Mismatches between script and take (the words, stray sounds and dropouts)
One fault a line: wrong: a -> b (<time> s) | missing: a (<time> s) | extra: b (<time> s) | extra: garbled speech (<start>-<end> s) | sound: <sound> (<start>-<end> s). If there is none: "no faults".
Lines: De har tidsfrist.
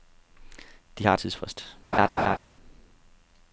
sound: laugh (1.9-2.4 s)